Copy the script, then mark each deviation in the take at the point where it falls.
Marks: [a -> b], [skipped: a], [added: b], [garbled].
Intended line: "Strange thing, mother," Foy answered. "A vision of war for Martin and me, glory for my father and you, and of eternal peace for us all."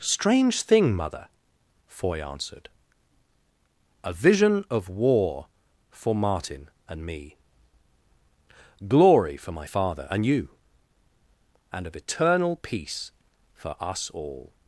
"Strange thing, mother," Foy answered. "A vision of war for Martin and me, glory for my father and you, and of eternal peace for us all."